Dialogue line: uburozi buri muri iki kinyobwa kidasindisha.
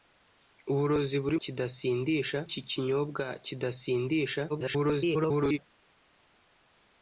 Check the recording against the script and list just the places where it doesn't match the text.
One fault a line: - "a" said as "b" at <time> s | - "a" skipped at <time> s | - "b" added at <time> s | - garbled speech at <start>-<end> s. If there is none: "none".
- "muri" said as "kidasindisha" at 1.4 s
- garbled speech at 4.5-5.6 s